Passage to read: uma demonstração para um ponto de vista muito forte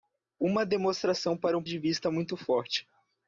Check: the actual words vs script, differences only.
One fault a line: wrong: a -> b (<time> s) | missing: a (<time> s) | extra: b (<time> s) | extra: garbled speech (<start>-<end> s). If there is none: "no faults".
missing: ponto (1.6 s)